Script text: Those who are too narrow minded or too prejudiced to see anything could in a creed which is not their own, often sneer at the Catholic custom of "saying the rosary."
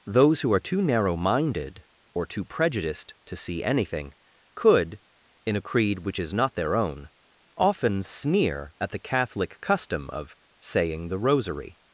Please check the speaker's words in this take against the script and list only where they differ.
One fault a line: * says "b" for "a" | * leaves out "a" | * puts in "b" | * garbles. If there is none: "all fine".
all fine